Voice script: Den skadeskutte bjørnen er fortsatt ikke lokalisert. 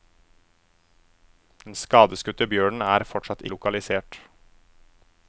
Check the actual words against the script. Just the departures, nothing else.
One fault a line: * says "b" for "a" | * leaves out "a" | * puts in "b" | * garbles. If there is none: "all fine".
* leaves out "ikke"